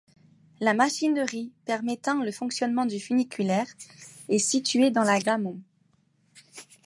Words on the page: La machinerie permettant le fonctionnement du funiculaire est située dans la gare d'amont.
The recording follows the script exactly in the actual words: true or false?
false